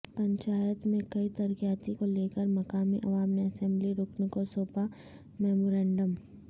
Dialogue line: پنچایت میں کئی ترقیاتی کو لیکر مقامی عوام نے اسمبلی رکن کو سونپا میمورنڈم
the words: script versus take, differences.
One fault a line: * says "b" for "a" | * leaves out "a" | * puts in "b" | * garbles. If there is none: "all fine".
all fine